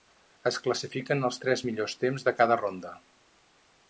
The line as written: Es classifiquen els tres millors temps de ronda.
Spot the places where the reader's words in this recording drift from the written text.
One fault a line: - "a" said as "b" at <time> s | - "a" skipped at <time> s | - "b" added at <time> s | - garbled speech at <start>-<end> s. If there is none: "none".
- "cada" added at 2.4 s